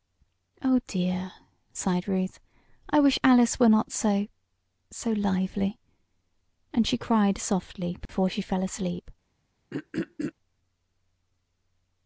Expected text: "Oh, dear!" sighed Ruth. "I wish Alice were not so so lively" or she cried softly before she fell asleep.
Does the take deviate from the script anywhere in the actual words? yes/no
yes